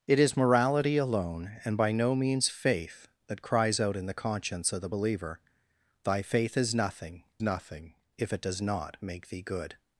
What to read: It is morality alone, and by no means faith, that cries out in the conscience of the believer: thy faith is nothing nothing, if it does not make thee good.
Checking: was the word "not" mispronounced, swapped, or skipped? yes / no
no